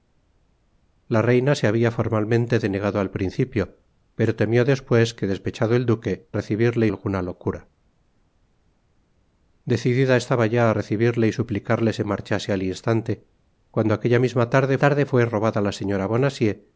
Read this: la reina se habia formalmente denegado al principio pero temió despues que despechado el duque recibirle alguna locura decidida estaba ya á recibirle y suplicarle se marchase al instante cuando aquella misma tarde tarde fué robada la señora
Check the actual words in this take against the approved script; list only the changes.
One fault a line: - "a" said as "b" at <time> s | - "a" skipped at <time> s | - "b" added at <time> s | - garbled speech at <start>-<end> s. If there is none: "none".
none